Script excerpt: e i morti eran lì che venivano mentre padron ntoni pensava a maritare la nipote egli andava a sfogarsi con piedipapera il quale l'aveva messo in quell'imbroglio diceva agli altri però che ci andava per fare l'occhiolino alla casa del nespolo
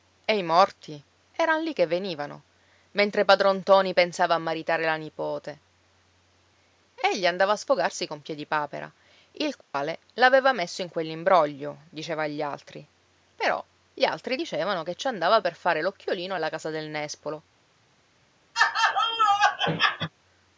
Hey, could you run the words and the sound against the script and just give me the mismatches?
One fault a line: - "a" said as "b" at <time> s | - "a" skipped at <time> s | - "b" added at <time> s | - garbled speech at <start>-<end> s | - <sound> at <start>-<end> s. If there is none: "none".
- dropout at 9.6-9.7 s
- "gli altri dicevano" added at 13.9 s
- laugh at 18.5-20.1 s